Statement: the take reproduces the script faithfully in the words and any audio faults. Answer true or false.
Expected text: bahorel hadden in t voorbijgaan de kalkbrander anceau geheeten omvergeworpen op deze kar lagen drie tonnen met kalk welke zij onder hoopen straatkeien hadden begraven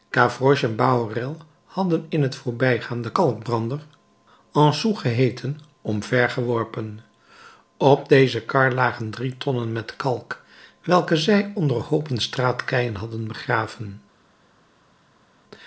true